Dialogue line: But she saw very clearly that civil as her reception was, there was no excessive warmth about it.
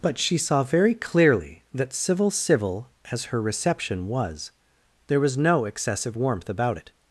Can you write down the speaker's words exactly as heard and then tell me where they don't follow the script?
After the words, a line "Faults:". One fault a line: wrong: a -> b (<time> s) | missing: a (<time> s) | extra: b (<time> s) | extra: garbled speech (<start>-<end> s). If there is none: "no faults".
But she saw very clearly that civil civil as her reception was, there was no excessive warmth about it.
Faults:
extra: civil (2.3 s)